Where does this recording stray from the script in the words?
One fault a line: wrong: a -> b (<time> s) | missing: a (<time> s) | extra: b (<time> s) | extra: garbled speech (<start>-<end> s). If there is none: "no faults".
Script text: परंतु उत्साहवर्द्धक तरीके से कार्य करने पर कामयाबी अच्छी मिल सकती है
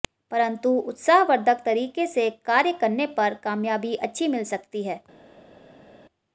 no faults